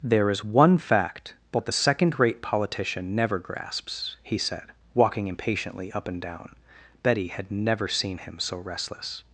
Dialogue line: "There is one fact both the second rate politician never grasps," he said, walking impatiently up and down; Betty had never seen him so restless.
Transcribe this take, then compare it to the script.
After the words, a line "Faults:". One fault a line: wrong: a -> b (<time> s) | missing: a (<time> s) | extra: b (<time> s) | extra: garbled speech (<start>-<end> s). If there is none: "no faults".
"There is one fact both the second rate politician never grasps," he said, walking impatiently up and down; Betty had never seen him so restless.
Faults:
no faults